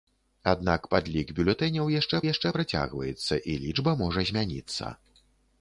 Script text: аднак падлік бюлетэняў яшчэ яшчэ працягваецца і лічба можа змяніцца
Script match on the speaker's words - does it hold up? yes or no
yes